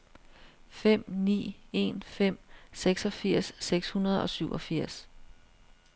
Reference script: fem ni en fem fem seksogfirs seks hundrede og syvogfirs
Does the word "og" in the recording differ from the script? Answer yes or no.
no